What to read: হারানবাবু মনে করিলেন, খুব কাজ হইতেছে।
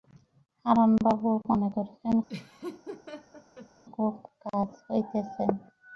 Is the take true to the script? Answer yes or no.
yes